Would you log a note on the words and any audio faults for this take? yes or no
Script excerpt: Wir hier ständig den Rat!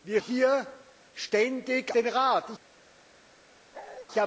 yes